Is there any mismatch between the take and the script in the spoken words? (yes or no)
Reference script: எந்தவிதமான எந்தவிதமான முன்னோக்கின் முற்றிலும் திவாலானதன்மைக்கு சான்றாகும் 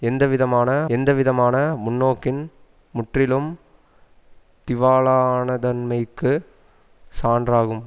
no